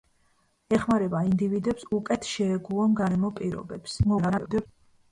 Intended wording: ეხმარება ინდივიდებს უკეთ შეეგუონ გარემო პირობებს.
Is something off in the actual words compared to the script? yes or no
yes